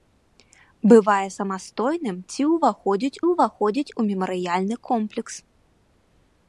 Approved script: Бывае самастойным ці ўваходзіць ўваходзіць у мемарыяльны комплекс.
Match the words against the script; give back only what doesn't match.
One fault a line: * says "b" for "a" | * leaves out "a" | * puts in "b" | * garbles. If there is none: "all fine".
all fine